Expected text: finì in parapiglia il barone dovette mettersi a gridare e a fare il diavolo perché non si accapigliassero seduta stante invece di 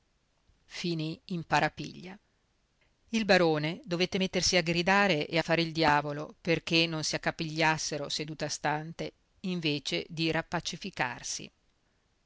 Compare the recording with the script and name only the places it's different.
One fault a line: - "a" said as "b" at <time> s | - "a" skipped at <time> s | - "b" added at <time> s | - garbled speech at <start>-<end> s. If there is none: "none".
none